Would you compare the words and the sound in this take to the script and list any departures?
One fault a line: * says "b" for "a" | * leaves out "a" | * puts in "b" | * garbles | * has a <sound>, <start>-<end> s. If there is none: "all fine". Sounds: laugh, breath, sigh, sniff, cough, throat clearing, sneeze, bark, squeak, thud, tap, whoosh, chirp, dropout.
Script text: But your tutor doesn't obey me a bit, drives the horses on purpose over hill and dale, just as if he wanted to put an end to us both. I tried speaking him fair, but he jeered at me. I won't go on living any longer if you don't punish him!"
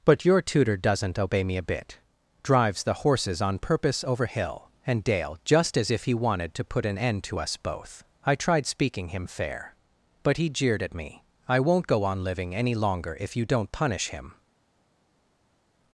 all fine